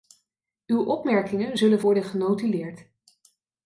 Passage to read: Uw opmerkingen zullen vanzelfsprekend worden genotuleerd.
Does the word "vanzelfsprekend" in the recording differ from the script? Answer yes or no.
yes